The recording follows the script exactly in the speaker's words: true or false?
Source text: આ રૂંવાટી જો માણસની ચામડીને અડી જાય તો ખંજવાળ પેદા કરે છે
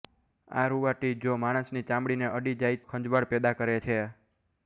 false